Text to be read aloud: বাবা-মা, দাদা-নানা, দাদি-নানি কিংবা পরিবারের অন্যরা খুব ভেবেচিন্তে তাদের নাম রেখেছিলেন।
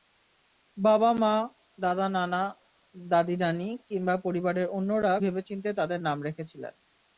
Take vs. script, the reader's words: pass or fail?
fail